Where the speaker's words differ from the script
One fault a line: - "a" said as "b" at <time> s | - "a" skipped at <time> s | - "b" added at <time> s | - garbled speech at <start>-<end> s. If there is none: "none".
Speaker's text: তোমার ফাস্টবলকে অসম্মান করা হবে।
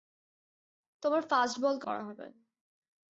- "অসম্মান" skipped at 1.9 s